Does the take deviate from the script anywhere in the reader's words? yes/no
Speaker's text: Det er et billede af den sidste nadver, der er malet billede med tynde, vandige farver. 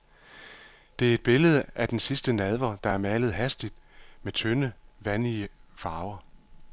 yes